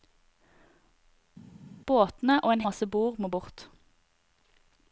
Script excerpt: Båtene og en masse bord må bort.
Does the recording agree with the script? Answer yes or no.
yes